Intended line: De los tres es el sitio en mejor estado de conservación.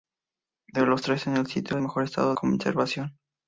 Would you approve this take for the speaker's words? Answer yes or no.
no